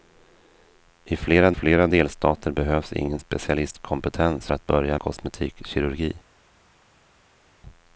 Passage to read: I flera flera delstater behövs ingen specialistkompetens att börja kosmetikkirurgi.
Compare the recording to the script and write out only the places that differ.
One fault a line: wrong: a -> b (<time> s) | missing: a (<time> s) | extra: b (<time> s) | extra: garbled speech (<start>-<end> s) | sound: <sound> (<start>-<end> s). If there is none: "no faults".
no faults